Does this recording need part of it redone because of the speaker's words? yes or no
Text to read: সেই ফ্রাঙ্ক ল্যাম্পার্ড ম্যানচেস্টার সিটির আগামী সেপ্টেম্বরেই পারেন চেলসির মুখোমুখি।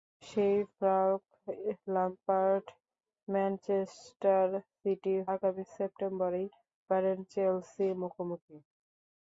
no